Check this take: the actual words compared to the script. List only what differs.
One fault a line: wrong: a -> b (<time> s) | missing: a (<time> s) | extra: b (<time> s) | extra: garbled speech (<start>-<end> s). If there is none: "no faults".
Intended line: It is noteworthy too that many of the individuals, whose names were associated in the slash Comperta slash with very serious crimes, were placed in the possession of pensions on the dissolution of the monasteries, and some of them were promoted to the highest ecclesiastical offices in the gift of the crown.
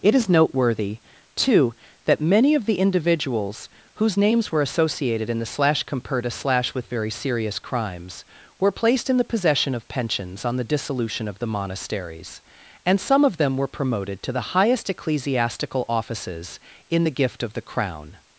no faults